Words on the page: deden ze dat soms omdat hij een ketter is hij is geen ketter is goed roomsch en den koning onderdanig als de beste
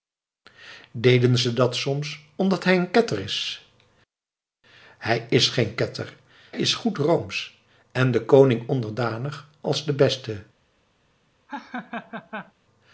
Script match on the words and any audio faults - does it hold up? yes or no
no